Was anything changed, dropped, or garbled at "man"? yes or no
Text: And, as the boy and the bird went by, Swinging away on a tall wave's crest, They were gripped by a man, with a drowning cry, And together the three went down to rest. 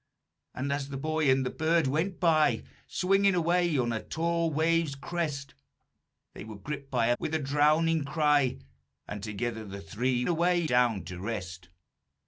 yes